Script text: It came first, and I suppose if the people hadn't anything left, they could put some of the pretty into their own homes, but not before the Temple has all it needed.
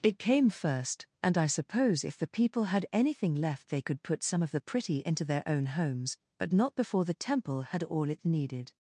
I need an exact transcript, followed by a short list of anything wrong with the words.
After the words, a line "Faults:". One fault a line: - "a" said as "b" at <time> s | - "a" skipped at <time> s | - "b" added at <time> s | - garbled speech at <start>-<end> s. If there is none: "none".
It came first, and I suppose if the people had anything left, they could put some of the pretty into their own homes, but not before the Temple had all it needed.
Faults:
- "hadn't" said as "had" at 2.6 s
- "has" said as "had" at 7.6 s